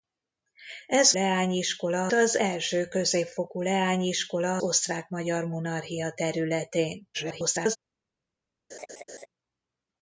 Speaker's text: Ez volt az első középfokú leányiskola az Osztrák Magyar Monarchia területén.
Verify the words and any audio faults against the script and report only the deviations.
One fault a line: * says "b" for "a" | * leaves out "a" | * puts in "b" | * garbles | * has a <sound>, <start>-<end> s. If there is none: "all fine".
* says "leányiskola" for "volt"
* leaves out "az"
* garbles
* has a laugh, 8.7-9.3 s